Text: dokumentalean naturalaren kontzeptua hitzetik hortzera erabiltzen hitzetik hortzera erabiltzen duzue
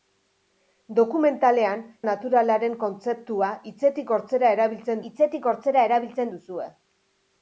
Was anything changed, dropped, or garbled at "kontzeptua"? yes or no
no